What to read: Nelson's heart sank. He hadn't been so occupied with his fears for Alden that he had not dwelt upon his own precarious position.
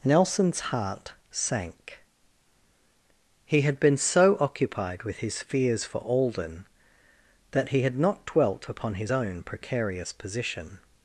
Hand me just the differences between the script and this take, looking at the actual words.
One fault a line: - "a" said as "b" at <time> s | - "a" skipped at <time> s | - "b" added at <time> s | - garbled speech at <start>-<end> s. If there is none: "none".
- "hadn't" said as "had" at 3.6 s